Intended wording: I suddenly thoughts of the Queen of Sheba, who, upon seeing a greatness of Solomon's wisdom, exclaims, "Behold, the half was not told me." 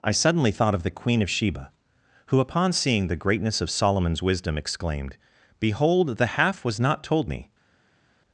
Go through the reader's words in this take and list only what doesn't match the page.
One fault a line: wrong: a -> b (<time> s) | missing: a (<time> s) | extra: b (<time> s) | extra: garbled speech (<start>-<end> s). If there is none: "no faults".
wrong: thoughts -> thought (0.5 s)
wrong: a -> the (3.1 s)
wrong: exclaims -> exclaimed (4.6 s)